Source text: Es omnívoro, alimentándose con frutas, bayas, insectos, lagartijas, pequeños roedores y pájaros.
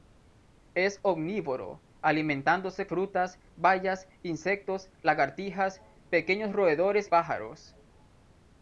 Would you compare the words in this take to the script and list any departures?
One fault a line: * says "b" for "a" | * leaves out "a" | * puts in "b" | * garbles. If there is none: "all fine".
* leaves out "con"
* leaves out "y"